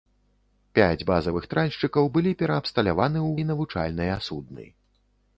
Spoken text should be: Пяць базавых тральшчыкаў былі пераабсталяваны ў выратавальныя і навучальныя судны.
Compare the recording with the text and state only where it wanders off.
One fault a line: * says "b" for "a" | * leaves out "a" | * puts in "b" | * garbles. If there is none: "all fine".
* leaves out "выратавальныя"